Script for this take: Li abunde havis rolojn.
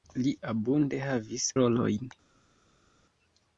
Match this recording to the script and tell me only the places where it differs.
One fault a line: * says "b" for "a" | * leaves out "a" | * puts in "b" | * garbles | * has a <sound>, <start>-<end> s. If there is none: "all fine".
all fine